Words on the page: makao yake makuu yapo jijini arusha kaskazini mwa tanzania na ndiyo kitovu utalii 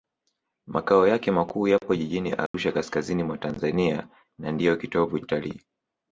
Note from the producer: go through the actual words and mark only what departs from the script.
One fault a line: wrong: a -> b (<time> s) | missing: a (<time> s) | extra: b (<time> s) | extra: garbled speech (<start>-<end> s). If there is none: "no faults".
no faults